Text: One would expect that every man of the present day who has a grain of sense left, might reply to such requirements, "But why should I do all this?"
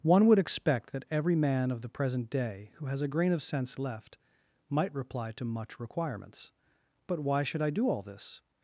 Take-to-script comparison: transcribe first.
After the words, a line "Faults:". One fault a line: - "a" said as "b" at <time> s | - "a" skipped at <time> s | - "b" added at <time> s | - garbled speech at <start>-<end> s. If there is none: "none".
One would expect that every man of the present day who has a grain of sense left, might reply to much requirements, "But why should I do all this?"
Faults:
- "such" said as "much" at 5.4 s